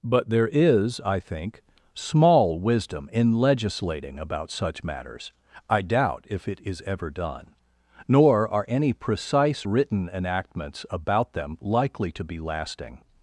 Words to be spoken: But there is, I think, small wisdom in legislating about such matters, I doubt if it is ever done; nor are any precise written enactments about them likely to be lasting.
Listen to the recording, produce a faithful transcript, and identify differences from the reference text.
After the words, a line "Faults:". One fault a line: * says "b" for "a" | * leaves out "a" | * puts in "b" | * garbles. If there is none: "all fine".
But there is, I think, small wisdom in legislating about such matters, I doubt if it is ever done; nor are any precise written enactments about them likely to be lasting.
Faults:
all fine